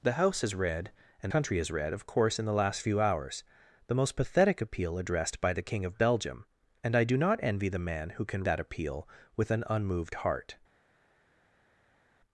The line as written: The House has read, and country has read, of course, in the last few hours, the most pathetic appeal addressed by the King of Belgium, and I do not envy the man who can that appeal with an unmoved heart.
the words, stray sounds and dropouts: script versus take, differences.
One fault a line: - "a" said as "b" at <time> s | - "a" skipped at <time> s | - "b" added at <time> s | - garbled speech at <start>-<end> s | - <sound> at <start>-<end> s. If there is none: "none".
none